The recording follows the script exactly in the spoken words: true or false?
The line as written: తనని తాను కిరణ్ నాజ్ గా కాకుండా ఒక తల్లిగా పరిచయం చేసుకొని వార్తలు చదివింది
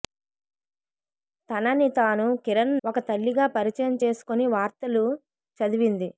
false